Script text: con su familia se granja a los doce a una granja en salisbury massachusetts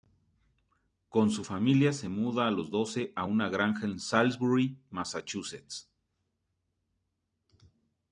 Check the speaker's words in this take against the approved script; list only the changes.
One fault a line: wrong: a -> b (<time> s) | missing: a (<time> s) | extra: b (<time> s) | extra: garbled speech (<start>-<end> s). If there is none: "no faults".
wrong: granja -> muda (2.1 s)